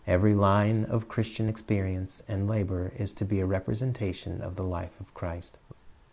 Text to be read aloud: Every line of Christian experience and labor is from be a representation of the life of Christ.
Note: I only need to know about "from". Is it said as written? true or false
false